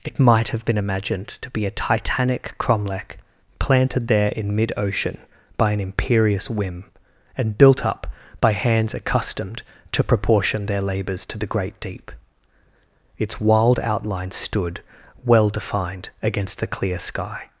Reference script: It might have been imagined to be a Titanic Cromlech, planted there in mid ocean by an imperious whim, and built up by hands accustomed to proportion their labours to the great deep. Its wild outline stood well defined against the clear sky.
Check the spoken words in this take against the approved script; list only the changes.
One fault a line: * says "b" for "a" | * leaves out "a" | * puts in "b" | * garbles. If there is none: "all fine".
all fine